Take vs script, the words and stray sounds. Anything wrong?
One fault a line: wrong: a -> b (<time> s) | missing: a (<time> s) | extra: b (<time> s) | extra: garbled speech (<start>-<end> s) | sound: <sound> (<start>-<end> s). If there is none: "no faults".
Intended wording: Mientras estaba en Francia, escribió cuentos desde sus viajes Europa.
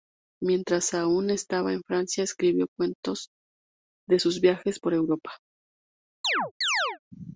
extra: aún (0.9 s)
wrong: desde -> de (4.1 s)
extra: por (4.8 s)
sound: chirp (6.2-7.0 s)